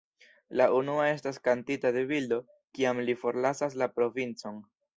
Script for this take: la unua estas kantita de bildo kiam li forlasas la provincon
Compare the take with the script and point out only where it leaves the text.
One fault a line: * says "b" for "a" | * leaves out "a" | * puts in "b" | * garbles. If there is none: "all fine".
all fine